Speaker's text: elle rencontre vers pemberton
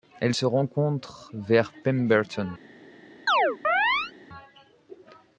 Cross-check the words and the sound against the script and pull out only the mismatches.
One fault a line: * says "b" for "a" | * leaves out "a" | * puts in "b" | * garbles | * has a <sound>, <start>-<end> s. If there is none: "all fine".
* puts in "se"
* has a chirp, 3.3-4.1 s